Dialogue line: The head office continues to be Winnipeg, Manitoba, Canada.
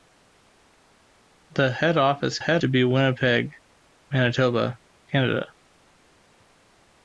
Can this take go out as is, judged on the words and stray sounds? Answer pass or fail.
fail